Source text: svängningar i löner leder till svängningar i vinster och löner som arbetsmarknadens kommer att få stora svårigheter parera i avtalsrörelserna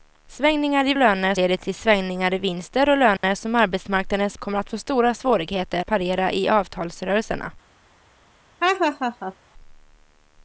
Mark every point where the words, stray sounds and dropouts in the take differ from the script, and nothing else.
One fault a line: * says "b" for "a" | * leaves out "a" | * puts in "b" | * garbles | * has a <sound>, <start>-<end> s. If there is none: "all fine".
* has a dropout, 3.2-3.2 s
* has a laugh, 8.6-9.3 s